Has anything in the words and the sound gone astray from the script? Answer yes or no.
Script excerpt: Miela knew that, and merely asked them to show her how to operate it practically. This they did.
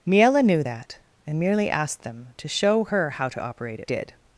yes